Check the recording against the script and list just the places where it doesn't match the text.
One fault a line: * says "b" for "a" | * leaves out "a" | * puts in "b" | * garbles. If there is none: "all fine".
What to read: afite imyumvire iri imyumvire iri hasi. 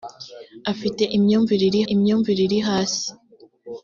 all fine